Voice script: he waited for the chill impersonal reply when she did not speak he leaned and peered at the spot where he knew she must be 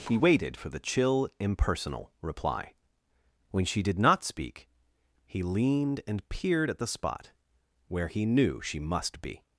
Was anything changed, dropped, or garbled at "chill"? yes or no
no